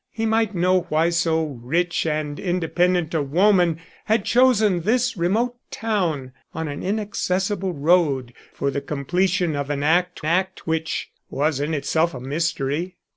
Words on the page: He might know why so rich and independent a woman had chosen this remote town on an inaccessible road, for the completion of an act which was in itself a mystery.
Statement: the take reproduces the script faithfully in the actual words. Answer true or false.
false